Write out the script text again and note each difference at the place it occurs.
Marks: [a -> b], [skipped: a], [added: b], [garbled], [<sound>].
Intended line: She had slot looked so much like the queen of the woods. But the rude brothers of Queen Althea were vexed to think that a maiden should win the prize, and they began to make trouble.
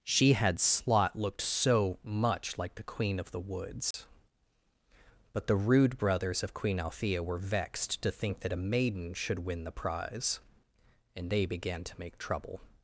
She had slot looked so much like the queen of the woods. [dropout] But the rude brothers of Queen Althea were vexed to think that a maiden should win the prize, and they began to make trouble.